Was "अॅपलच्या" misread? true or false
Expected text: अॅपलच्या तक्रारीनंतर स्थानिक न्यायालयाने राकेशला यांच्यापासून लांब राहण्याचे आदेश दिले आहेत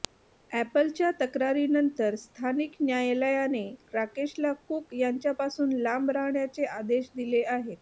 false